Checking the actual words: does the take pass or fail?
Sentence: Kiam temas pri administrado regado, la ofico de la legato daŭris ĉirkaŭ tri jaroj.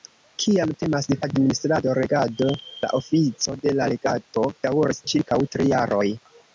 fail